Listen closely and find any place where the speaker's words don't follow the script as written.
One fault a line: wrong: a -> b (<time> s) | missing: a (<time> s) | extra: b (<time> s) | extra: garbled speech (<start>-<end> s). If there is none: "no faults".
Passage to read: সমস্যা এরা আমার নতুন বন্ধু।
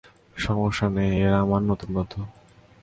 extra: নেই (0.9 s)